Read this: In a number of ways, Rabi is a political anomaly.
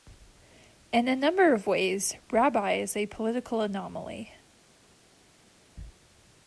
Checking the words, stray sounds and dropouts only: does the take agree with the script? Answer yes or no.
yes